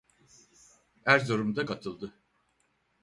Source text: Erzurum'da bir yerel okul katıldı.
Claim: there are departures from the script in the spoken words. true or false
true